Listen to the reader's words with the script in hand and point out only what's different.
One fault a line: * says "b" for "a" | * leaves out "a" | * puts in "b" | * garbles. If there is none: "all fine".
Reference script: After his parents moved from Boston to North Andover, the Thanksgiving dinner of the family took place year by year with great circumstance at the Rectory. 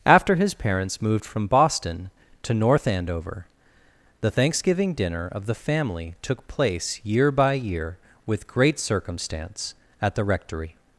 all fine